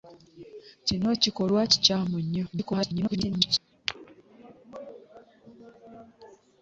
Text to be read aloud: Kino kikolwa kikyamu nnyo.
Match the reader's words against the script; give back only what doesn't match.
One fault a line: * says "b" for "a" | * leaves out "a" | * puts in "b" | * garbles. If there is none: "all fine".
* garbles